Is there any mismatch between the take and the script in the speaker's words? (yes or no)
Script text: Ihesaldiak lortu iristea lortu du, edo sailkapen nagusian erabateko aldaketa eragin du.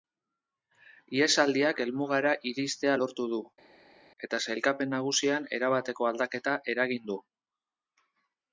yes